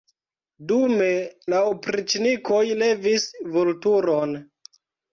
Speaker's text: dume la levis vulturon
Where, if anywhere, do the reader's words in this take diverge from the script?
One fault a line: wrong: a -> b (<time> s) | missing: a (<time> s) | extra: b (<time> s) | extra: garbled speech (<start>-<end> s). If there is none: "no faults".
extra: opriĉnikoj (1.7 s)